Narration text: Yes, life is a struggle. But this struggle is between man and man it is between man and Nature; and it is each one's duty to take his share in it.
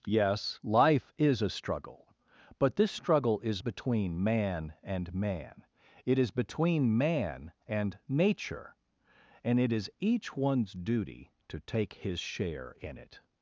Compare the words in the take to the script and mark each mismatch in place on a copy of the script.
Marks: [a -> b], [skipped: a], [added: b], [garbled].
Yes, life is a struggle. But this struggle is between man and man it is between man and Nature; and it is each one's duty to take his share in it.